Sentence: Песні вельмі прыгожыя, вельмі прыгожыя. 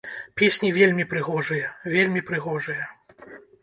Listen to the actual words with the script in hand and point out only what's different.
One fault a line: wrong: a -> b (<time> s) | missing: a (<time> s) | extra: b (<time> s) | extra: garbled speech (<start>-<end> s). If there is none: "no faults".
no faults